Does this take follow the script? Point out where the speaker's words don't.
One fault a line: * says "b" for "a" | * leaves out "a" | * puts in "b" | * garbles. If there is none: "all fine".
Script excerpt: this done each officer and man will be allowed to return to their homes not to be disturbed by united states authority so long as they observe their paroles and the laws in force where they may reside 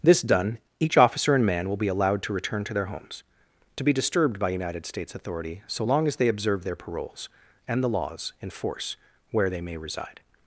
* leaves out "not"